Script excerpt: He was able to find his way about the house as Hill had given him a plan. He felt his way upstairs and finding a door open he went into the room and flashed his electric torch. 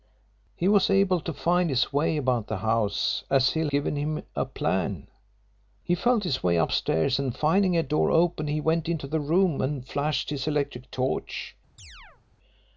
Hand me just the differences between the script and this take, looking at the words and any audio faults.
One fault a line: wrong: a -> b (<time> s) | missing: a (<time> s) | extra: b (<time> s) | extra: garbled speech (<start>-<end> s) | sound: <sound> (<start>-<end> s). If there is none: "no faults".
missing: had (3.7 s)
sound: chirp (11.8-12.2 s)